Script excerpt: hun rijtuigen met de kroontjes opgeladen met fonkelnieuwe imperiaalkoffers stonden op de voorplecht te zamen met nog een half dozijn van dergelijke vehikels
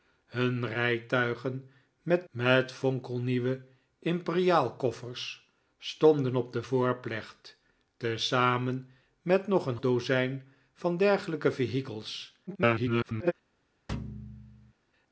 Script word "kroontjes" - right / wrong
wrong